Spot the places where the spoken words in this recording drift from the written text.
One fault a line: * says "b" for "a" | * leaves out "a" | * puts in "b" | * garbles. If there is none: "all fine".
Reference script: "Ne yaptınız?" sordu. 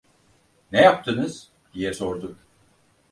* puts in "diye"